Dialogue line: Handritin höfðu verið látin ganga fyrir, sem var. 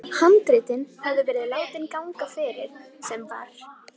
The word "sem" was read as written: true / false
true